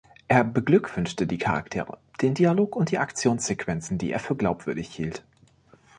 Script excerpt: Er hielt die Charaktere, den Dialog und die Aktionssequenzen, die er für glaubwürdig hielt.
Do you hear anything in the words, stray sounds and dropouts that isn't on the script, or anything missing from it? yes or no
yes